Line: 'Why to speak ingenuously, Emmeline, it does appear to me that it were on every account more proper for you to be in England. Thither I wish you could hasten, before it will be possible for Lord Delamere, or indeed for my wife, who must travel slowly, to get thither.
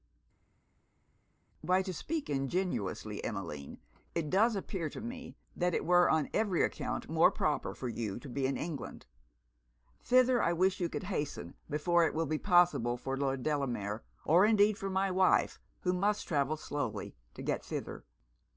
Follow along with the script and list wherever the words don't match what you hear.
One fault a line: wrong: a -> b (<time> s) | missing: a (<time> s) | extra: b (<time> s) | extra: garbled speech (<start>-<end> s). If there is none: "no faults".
no faults